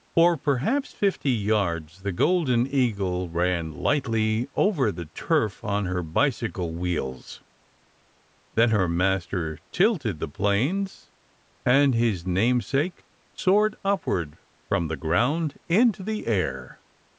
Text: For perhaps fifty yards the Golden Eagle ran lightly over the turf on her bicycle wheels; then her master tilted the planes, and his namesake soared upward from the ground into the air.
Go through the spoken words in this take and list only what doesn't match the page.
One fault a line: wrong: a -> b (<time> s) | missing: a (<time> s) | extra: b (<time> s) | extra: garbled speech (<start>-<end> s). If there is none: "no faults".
no faults